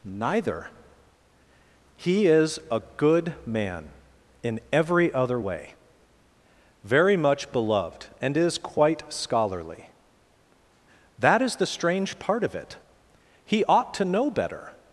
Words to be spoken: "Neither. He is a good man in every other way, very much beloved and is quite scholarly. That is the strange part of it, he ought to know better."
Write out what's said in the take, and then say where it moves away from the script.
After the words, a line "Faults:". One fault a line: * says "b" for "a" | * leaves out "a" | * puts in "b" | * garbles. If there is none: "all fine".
"Neither. He is a good man in every other way, very much beloved and is quite scholarly. That is the strange part of it, he ought to know better."
Faults:
all fine